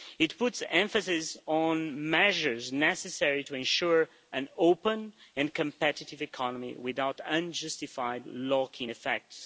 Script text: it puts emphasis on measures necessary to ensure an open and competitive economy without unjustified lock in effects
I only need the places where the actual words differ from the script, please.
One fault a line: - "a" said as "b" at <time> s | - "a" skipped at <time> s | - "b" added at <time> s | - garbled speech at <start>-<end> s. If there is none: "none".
none